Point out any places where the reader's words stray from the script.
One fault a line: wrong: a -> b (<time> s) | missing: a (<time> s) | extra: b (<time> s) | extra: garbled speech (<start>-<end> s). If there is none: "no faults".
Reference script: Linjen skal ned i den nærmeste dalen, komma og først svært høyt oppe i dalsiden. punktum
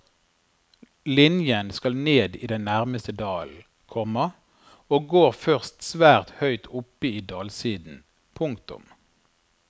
extra: går (5.1 s)